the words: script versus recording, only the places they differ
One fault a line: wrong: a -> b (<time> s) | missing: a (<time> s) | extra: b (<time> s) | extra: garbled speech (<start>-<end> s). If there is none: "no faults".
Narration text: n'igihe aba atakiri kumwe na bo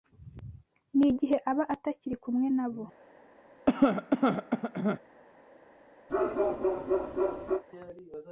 no faults